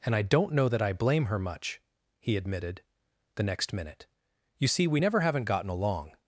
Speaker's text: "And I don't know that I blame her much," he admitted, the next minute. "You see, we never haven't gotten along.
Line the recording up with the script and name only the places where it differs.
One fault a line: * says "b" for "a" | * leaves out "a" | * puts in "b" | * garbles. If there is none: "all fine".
all fine